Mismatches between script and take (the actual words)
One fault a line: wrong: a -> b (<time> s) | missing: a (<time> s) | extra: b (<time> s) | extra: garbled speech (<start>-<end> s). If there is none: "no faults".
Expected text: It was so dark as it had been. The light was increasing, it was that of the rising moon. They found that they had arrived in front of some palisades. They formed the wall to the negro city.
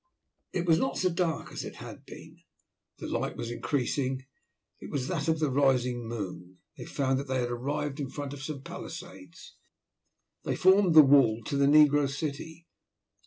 extra: not (0.8 s)